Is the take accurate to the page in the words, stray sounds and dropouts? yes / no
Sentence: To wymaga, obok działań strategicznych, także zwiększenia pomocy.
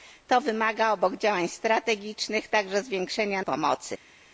yes